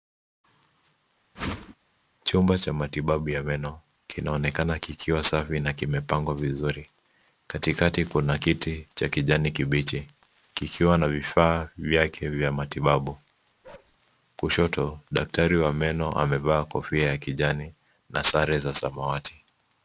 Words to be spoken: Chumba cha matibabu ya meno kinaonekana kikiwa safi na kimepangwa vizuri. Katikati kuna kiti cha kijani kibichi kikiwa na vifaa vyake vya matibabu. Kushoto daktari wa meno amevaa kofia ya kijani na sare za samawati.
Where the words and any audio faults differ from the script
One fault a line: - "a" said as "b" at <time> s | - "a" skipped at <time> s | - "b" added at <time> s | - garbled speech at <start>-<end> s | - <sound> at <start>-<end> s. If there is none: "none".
- whoosh at 1.4-1.8 s
- bark at 13.6-14.0 s